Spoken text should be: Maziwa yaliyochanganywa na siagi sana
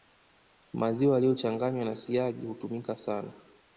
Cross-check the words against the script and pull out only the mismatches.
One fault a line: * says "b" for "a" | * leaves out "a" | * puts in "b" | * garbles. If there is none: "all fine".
* puts in "hutumika"